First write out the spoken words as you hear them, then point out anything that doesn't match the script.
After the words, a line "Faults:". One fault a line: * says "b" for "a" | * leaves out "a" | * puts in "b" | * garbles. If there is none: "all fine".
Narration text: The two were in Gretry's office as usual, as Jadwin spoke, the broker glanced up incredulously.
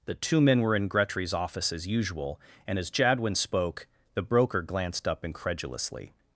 The two men were in Gretry's office as usual, and as Jadwin spoke, the broker glanced up incredulously.
Faults:
* puts in "men"
* puts in "and"